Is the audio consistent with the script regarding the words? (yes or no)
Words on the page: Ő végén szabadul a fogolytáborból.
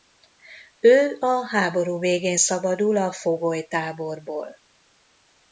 no